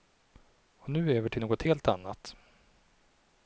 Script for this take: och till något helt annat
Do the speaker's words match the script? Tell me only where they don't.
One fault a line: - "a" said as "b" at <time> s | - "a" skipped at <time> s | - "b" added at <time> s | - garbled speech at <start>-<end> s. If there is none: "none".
- "nu över" added at 0.9 s